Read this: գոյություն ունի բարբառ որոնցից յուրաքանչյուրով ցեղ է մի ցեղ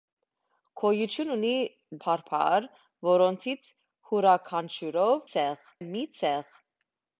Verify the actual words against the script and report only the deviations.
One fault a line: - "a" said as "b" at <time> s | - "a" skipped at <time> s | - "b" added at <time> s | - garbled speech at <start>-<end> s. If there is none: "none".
none